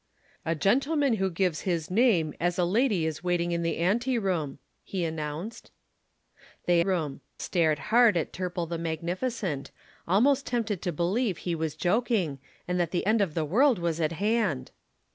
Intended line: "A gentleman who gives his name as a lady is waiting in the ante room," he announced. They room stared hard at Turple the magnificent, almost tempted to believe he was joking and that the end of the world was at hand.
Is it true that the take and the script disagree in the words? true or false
false